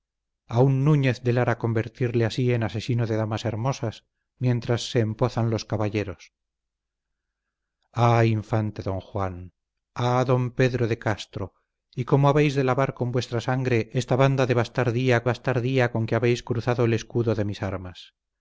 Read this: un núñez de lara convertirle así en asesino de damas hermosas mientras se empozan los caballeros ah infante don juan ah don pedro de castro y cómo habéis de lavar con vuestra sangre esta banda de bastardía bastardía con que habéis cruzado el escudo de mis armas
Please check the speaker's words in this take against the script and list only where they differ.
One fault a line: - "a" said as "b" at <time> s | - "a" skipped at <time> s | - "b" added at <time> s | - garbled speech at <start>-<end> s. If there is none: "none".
none